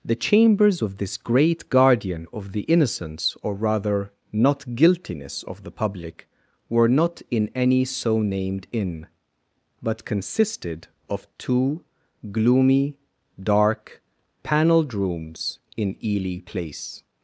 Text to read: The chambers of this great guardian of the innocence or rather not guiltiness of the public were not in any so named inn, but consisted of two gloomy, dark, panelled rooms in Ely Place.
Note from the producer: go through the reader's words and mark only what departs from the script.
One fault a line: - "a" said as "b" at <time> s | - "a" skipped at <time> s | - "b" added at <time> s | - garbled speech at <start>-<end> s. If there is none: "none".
none